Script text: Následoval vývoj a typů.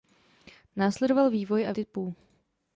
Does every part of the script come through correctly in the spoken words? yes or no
yes